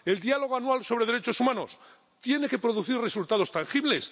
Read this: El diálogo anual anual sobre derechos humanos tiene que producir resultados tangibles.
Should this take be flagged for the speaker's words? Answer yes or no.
yes